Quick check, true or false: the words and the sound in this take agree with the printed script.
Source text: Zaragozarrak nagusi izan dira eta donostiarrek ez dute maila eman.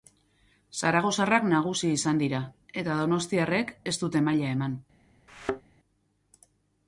false